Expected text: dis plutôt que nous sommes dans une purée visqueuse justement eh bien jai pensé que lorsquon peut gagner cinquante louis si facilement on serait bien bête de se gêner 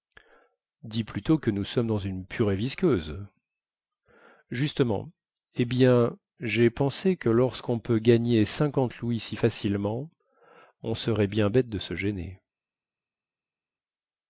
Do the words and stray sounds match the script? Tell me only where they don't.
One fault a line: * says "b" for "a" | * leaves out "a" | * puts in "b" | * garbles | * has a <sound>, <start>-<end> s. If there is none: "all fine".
all fine